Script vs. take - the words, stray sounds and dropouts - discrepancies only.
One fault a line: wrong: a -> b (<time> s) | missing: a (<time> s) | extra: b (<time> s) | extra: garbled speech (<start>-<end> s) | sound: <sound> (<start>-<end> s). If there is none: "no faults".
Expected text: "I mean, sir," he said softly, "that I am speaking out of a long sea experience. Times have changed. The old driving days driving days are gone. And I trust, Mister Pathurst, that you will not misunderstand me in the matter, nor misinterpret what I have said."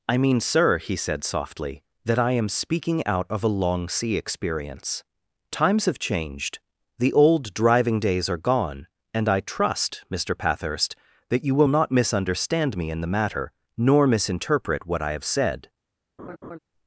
missing: driving days (8.3 s)
sound: laugh (16.2-16.6 s)